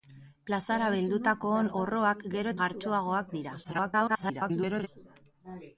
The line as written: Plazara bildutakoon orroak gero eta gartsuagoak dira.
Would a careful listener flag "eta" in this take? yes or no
yes